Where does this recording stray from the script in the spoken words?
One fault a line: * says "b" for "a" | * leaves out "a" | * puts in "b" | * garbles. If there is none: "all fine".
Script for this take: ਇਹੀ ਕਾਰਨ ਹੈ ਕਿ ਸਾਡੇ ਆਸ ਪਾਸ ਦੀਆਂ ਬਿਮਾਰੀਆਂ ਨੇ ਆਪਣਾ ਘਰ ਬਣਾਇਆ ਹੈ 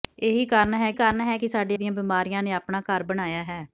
* puts in "ਕਾਰਨ ਹੈ"
* leaves out "ਆਸ ਪਾਸ"